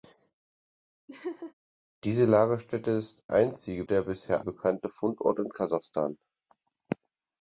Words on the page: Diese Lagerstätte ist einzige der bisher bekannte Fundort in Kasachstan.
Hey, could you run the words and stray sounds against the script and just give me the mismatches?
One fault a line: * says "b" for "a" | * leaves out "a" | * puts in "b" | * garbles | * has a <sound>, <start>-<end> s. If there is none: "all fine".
* has a laugh, 1.1-1.5 s